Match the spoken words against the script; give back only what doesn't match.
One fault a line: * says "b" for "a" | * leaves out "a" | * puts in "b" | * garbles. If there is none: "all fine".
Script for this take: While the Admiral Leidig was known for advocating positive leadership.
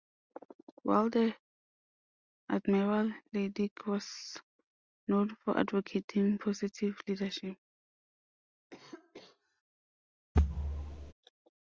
all fine